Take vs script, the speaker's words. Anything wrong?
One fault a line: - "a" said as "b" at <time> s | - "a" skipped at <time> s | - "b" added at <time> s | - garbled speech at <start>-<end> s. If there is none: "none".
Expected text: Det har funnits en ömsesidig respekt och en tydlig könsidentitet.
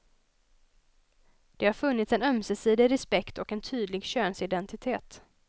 none